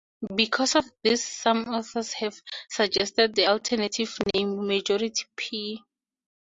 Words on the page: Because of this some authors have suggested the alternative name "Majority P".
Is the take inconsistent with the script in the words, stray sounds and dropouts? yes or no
no